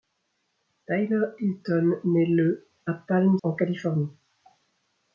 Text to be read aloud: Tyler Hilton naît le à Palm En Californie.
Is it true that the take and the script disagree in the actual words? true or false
false